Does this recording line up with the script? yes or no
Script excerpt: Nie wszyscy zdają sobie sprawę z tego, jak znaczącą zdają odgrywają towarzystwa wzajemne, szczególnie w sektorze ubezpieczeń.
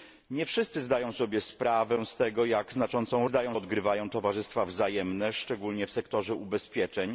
yes